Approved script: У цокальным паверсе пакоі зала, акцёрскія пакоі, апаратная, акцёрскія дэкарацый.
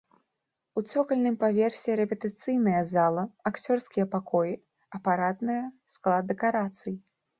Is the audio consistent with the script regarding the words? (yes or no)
no